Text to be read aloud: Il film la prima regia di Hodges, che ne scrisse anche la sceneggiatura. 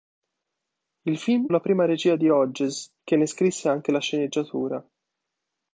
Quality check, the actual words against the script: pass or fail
pass